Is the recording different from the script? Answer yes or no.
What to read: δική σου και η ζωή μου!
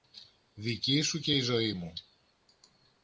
no